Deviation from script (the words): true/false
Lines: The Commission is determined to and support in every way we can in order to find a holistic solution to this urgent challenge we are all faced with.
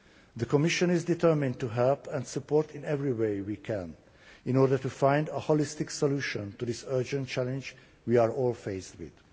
true